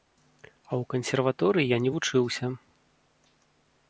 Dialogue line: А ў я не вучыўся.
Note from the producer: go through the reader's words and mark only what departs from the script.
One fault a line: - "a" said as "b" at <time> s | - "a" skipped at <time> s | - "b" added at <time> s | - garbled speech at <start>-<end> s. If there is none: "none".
- "кансерваторыі" added at 0.9 s